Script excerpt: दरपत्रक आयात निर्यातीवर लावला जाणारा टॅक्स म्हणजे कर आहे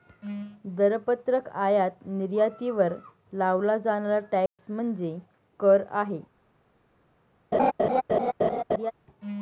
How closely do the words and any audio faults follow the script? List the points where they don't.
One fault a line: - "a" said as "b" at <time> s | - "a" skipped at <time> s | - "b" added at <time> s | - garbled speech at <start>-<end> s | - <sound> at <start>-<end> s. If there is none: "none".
- dropout at 4.5-4.6 s
- laugh at 7.5-8.9 s